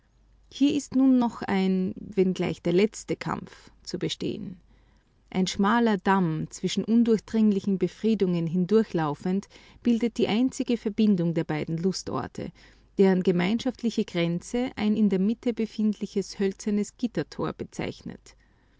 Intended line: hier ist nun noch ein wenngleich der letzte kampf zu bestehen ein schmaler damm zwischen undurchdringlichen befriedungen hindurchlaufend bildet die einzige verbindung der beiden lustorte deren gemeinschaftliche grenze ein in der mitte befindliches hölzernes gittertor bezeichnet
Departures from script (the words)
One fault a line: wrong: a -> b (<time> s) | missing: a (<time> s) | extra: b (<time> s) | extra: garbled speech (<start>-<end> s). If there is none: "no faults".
no faults